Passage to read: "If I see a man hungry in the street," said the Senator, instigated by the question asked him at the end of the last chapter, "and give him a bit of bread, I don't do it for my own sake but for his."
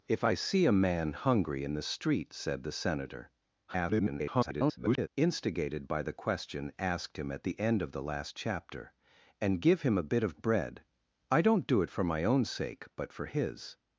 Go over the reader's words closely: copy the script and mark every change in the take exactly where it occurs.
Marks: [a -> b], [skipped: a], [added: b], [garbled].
"If I see a man hungry in the street," said the Senator, [garbled] instigated by the question asked him at the end of the last chapter, "and give him a bit of bread, I don't do it for my own sake but for his."